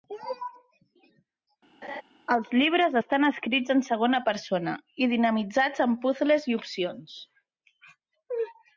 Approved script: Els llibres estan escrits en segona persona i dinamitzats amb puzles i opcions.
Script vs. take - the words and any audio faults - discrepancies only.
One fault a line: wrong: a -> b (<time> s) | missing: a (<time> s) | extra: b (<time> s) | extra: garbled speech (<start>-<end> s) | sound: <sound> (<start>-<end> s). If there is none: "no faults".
sound: laugh (1.8-2.0 s)